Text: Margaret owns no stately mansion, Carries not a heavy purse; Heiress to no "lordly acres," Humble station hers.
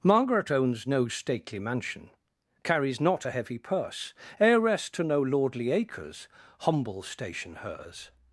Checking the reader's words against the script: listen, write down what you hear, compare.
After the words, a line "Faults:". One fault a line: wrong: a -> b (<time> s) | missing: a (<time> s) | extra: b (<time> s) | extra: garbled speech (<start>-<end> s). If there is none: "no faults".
Margaret owns no stately mansion, Carries not a heavy purse; Heiress to no "lordly acres," Humble station hers.
Faults:
no faults